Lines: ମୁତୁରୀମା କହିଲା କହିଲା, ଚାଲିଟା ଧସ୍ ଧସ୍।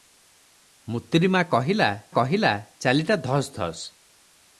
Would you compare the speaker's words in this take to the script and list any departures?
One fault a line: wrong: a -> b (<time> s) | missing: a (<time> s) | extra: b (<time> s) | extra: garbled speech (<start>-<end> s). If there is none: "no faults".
no faults